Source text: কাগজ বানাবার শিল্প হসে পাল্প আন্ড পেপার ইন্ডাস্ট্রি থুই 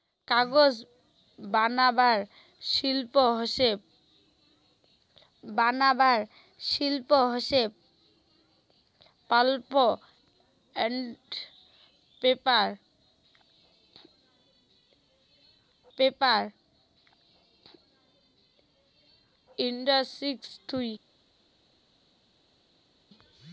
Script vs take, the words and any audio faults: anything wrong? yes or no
yes